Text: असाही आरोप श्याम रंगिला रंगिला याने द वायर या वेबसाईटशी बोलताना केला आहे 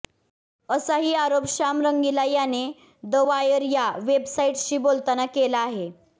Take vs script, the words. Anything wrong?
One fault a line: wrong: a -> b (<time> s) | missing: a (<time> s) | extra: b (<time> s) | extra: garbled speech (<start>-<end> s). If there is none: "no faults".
missing: रंगिला (2.2 s)